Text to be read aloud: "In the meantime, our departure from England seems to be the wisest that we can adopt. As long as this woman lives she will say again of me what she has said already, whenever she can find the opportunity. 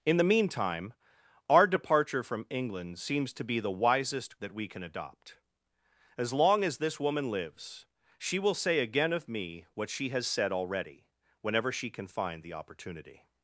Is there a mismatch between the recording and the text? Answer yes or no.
no